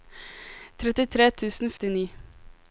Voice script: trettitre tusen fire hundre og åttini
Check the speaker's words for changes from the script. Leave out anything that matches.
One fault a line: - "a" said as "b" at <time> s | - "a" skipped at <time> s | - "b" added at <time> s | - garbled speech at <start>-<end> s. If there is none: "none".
- "fire hundre og" skipped at 1.8 s